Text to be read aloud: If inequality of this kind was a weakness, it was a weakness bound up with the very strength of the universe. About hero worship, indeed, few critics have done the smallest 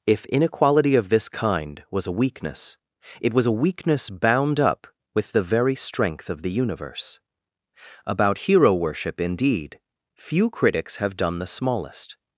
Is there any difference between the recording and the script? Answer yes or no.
no